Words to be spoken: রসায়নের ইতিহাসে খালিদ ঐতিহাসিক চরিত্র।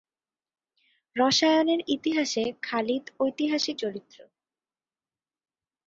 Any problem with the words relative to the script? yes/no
no